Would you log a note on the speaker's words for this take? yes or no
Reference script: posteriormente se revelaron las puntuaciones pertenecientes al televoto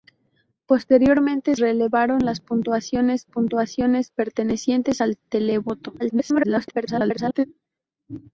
yes